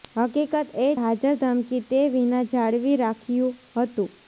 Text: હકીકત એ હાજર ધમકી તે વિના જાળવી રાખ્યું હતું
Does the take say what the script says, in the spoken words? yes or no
yes